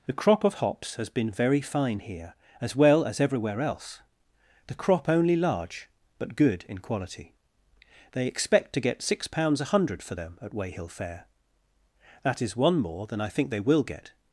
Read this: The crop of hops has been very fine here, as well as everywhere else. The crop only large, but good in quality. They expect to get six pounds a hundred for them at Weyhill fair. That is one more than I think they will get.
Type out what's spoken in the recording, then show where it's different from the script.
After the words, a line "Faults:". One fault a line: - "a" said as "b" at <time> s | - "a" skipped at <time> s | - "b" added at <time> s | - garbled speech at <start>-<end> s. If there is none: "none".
The crop of hops has been very fine here, as well as everywhere else. The crop only large, but good in quality. They expect to get six pounds a hundred for them at Weyhill fair. That is one more than I think they will get.
Faults:
none